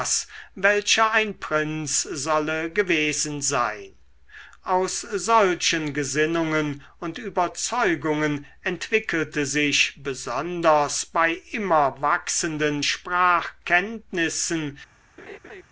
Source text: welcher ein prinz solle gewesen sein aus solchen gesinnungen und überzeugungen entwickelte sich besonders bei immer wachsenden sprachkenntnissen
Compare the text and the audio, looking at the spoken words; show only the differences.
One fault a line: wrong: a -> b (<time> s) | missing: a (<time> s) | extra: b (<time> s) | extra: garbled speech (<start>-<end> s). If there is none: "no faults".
no faults